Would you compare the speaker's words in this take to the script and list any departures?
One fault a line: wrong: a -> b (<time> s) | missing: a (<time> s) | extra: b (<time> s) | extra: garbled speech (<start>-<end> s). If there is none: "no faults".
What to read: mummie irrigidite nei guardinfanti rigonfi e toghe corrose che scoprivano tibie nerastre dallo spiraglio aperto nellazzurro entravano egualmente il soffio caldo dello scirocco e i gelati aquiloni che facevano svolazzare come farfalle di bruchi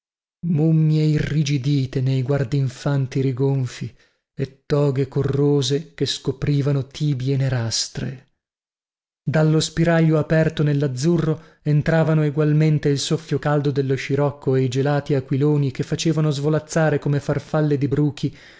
no faults